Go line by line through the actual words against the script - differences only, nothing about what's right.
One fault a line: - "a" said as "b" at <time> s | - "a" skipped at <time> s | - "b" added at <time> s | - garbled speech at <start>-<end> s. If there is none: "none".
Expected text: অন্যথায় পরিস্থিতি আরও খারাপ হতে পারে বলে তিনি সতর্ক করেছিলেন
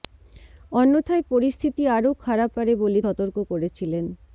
- "হতে" skipped at 2.5 s
- "তিনি" skipped at 3.0 s